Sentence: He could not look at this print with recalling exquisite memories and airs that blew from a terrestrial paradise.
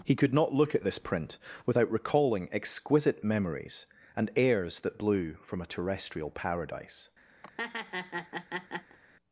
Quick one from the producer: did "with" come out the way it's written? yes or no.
no